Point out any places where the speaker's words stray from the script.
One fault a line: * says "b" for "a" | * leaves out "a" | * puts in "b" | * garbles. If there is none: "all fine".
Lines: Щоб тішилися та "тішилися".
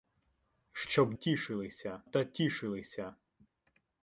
all fine